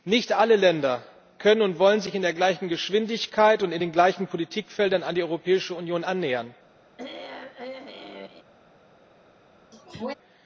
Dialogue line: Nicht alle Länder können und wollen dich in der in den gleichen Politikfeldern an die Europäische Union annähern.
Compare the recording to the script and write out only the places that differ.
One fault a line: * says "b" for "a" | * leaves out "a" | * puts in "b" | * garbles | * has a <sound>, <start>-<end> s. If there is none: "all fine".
* says "sich" for "dich"
* puts in "gleichen Geschwindigkeit und"
* has a throat clearing, 7.0-8.4 s
* has a sneeze, 9.7-10.1 s